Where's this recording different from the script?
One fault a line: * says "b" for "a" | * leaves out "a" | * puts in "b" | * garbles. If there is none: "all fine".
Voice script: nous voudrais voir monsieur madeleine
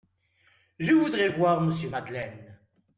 * says "je" for "nous"